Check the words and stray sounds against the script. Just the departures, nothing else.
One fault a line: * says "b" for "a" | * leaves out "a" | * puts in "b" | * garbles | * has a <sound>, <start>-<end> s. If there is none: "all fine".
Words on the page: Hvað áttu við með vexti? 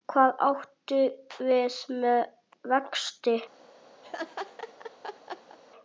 * has a laugh, 4.0-5.6 s